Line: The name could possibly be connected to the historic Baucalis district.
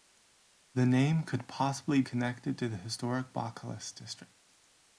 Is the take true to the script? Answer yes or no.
no